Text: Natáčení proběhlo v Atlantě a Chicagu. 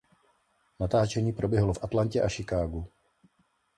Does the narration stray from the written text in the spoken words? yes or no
no